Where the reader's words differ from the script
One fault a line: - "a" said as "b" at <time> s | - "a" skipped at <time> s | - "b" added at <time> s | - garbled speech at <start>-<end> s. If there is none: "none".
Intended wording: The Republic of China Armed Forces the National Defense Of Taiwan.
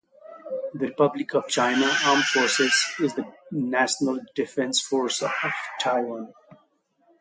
- "is" added at 3.0 s
- "Force" added at 4.8 s